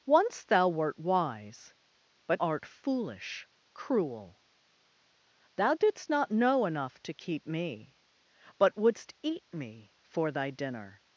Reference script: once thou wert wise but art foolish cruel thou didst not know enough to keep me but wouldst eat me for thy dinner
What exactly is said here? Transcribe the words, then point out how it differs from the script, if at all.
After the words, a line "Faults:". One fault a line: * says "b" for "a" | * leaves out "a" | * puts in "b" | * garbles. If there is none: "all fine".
once thou wert wise but art foolish cruel thou didst not know enough to keep me but wouldst eat me for thy dinner
Faults:
all fine